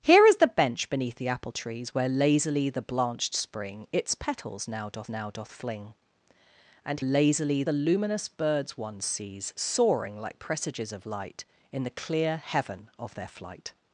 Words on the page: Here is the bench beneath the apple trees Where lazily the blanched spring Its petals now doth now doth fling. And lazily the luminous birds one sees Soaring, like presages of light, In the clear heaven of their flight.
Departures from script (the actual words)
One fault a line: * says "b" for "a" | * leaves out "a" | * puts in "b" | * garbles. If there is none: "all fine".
all fine